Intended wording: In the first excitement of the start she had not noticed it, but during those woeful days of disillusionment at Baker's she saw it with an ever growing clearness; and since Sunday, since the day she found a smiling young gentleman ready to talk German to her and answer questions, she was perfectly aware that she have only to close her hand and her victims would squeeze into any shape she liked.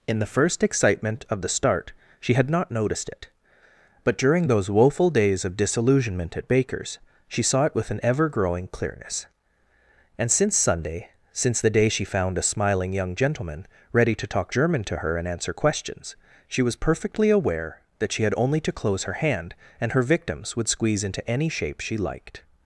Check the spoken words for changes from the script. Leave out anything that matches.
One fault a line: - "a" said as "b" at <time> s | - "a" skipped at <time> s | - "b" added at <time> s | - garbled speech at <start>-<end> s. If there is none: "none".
- "have" said as "had" at 18.2 s